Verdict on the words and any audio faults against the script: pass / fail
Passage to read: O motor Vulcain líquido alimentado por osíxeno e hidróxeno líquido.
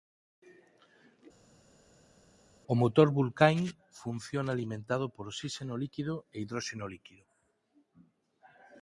fail